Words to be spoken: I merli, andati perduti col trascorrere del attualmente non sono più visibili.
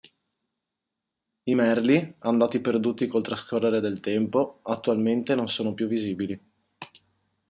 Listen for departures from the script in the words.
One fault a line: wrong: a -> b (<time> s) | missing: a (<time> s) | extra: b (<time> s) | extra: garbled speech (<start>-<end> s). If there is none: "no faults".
extra: tempo (4.0 s)